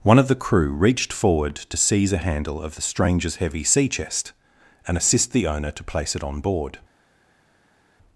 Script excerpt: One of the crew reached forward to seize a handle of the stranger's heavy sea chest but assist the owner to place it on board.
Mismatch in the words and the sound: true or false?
true